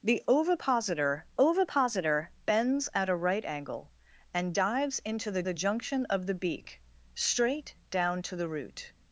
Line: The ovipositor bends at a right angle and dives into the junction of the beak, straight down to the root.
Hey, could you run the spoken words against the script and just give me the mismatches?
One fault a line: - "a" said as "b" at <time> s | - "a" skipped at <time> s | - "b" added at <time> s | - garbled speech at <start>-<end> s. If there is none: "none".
- "ovipositor" added at 1.4 s
- "the" added at 5.4 s